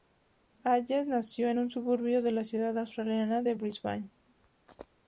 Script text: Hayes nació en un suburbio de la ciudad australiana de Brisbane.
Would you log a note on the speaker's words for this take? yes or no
no